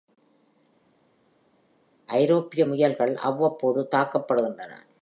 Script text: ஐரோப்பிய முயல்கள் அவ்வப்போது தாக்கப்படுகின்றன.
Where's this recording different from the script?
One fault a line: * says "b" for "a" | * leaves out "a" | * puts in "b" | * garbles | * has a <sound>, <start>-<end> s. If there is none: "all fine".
all fine